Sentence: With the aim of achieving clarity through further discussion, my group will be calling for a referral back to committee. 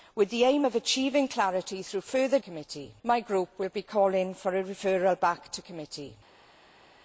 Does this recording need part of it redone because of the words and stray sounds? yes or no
yes